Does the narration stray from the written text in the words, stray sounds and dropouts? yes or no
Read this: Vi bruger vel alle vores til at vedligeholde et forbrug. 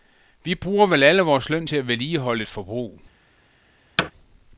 yes